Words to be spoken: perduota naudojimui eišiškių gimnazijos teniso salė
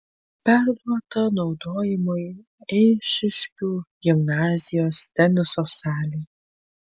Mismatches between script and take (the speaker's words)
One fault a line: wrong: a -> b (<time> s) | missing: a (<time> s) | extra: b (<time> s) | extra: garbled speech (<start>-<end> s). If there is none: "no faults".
no faults